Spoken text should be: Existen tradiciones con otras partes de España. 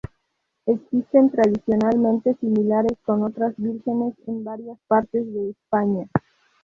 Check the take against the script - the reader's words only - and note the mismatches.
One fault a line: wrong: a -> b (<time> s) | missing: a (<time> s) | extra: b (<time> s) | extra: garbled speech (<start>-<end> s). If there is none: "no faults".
extra: similares (2.4 s)
extra: vírgenes en varias (3.6 s)